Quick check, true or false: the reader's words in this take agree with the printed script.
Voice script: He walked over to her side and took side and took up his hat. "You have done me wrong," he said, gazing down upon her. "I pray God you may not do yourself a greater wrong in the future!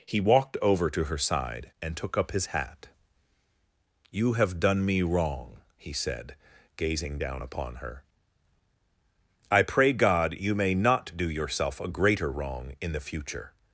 false